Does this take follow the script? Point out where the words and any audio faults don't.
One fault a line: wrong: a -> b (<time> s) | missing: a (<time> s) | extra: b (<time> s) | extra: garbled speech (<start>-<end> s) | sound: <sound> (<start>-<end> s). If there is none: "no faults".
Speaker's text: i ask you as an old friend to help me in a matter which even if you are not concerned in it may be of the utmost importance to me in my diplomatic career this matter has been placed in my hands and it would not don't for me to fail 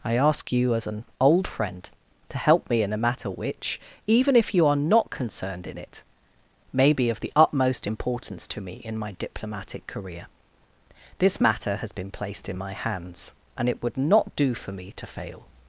wrong: don't -> do (14.4 s)